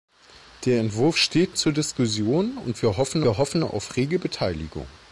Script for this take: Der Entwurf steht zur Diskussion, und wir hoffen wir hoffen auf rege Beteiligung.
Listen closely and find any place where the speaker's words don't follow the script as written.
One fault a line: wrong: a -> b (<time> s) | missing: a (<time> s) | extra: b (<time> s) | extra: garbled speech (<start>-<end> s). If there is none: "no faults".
no faults